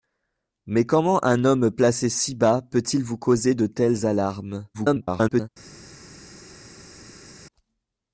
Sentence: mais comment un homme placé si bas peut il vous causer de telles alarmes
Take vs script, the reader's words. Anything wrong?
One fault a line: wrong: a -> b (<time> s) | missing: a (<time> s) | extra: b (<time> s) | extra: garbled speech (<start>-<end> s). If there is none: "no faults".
extra: garbled speech (4.7-5.5 s)